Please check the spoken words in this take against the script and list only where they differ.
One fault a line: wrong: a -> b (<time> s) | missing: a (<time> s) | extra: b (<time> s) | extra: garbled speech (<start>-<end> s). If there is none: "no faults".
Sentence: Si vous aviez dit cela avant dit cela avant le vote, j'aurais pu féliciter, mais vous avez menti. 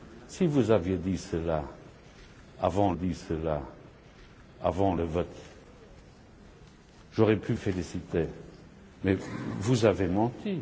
no faults